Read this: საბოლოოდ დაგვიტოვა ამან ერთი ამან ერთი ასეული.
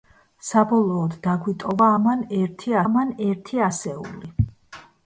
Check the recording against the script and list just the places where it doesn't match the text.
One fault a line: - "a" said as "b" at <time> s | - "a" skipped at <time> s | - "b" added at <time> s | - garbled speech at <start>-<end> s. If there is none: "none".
none